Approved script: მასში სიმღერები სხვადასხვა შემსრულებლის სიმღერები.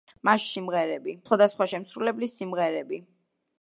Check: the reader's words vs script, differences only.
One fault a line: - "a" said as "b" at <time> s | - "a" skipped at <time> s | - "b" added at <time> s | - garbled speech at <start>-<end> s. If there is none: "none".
none